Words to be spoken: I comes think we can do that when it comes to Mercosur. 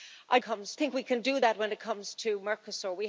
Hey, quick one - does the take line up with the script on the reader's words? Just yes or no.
yes